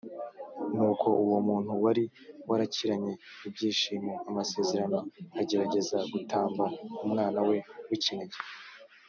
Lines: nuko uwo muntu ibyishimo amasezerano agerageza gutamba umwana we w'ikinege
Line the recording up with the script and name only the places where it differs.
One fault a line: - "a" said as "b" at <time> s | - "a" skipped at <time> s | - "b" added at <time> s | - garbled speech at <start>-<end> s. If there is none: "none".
- "wari warakiranye" added at 1.8 s